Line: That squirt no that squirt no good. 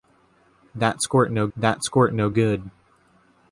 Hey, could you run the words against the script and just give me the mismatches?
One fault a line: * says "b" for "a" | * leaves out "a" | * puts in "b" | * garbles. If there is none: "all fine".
all fine